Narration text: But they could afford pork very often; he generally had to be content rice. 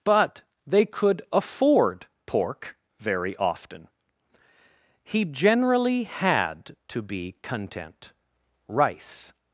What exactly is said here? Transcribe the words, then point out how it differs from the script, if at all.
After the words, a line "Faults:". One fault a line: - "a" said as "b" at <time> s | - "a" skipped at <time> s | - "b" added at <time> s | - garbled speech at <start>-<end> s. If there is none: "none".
But they could afford pork very often; he generally had to be content rice.
Faults:
none